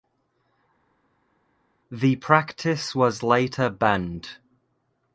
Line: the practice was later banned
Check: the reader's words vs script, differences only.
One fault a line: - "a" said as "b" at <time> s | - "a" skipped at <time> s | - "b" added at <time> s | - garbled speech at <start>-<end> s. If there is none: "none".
none